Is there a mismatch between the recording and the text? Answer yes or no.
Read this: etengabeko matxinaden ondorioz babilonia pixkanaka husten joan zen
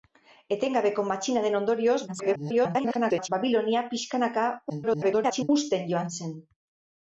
yes